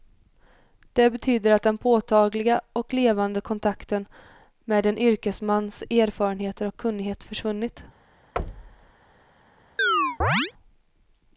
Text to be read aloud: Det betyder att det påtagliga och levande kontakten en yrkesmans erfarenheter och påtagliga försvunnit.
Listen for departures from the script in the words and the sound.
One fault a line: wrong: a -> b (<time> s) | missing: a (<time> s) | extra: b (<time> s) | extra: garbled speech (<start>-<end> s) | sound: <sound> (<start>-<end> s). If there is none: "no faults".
wrong: det -> den (1.6 s)
extra: med (4.6 s)
wrong: påtagliga -> kunnighet (6.8 s)
sound: thud (8.4-8.9 s)
sound: chirp (9.8-10.5 s)